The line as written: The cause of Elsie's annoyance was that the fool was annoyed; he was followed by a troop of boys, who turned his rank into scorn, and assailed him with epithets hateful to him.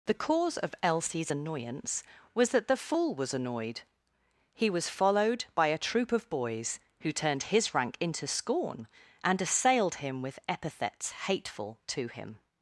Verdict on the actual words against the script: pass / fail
pass